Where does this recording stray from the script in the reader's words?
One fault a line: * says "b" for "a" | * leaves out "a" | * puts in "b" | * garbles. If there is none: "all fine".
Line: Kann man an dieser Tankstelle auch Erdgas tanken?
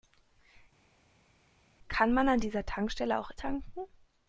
* leaves out "Erdgas"